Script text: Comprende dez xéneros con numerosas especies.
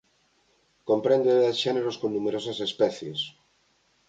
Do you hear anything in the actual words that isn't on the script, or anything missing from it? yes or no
no